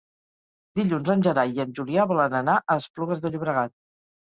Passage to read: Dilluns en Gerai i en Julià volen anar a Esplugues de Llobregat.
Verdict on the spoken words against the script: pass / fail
pass